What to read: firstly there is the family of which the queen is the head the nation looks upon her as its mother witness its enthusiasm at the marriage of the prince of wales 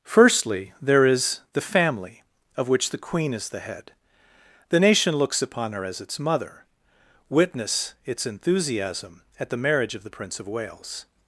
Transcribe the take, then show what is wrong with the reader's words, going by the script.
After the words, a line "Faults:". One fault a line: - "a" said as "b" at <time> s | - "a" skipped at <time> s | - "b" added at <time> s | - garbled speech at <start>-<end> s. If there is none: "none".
firstly there is the family of which the queen is the head the nation looks upon her as its mother witness its enthusiasm at the marriage of the prince of wales
Faults:
none